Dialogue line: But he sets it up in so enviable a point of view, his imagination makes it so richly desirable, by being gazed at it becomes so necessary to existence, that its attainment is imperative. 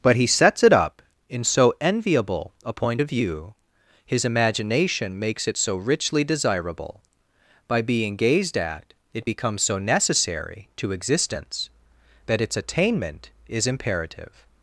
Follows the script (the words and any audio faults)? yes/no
yes